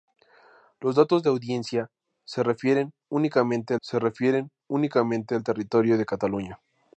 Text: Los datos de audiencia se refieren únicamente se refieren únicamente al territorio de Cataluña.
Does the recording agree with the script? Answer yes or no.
yes